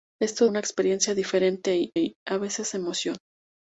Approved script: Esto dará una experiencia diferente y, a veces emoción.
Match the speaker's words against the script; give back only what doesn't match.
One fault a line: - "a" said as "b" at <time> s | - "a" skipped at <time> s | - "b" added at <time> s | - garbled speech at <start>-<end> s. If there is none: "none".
- "dará" skipped at 0.5 s
- "y" added at 2.0 s